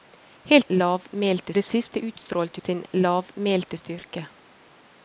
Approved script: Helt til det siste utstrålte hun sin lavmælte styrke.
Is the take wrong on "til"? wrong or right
wrong